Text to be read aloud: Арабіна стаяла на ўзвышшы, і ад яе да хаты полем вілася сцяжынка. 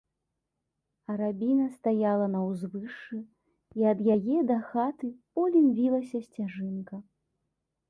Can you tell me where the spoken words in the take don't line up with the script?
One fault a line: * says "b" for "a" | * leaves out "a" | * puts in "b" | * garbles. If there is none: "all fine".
all fine